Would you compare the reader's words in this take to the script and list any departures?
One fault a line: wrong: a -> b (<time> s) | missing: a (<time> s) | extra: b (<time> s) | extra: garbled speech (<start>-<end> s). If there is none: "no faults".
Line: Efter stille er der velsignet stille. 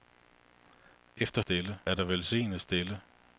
no faults